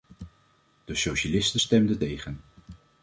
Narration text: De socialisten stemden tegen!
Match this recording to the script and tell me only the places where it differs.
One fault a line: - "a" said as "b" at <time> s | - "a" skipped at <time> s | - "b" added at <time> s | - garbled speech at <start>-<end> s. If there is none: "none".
none